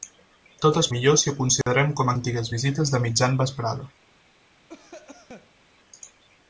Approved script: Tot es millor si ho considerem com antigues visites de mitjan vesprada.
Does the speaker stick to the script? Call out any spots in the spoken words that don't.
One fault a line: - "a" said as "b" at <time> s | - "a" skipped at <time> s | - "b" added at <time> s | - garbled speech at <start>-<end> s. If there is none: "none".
none